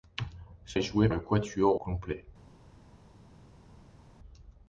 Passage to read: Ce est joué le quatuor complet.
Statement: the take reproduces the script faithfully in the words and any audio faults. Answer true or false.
true